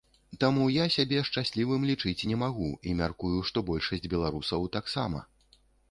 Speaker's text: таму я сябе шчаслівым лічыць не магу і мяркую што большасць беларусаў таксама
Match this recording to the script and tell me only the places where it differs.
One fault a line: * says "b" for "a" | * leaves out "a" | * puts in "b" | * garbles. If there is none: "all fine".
all fine